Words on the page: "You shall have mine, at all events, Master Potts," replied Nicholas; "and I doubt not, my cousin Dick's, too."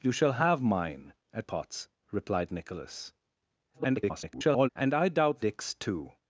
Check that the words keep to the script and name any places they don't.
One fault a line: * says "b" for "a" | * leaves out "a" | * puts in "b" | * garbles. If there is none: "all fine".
* leaves out "all events Master"
* garbles
* leaves out "not my cousin"